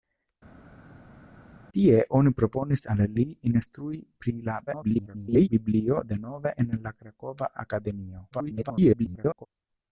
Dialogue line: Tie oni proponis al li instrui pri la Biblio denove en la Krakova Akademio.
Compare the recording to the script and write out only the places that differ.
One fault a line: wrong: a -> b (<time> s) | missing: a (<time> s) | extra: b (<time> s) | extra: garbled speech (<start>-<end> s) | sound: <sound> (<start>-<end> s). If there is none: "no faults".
extra: garbled speech (4.7-5.5 s)
extra: garbled speech (8.3-9.5 s)